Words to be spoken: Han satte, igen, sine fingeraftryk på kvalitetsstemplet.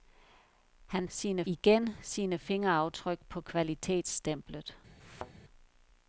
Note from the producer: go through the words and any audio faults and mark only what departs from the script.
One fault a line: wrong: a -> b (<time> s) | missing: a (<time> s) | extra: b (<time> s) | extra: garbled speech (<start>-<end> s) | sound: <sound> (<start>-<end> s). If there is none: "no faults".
wrong: satte -> sine (1.1 s)
sound: thud (5.0-5.3 s)